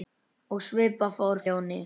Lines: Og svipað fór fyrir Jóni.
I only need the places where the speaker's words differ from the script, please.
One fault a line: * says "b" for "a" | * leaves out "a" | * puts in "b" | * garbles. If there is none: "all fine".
* leaves out "fyrir"